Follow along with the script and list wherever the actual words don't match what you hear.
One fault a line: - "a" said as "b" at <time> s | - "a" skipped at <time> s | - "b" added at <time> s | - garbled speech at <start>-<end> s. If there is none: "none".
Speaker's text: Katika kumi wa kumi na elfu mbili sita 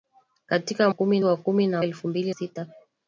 none